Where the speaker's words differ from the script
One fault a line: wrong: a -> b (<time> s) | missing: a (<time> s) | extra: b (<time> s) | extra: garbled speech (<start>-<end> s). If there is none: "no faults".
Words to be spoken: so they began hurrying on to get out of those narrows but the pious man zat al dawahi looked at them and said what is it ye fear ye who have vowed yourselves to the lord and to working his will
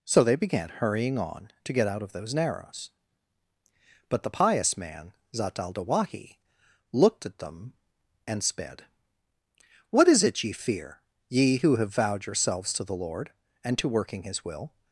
wrong: said -> sped (8.4 s)